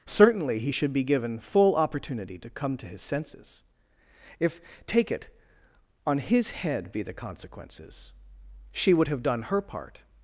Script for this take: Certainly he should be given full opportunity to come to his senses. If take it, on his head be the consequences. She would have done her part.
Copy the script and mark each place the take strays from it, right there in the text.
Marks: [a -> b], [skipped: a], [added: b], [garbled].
Certainly he should be given full opportunity to come to his senses. If take it, on his head be the consequences. She would have done her part.